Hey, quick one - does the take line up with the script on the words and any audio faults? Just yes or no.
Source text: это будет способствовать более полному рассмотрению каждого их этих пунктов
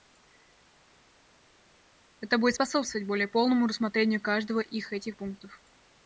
yes